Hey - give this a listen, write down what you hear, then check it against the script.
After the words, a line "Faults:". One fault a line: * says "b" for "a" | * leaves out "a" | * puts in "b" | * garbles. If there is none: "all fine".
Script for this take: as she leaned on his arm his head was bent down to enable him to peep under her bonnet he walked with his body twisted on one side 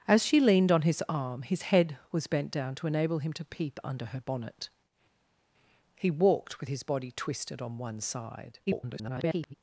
as she leaned on his arm his head was bent down to enable him to peep under her bonnet he walked with his body twisted on one side [garbled]
Faults:
* garbles